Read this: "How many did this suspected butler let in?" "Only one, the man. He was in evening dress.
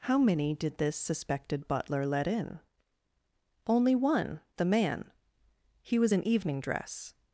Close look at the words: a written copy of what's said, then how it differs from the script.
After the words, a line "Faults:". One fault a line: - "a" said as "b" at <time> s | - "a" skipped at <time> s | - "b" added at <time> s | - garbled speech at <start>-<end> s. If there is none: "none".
"How many did this suspected butler let in?" "Only one, the man. He was in evening dress.
Faults:
none